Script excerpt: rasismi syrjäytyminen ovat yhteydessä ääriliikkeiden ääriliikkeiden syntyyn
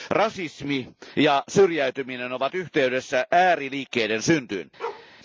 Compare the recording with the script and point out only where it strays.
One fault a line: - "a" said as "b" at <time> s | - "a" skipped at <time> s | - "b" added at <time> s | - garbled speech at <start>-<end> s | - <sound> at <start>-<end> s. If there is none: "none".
- "ja" added at 1.2 s
- "ääriliikkeiden" skipped at 4.2 s
- bark at 4.8-5.1 s